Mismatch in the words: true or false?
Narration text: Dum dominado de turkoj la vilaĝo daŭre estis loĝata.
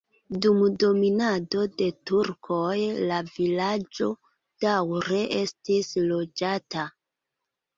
false